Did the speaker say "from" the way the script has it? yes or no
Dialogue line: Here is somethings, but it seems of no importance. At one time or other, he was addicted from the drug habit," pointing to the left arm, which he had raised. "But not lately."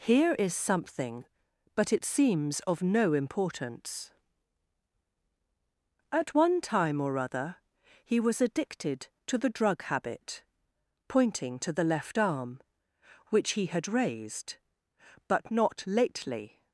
no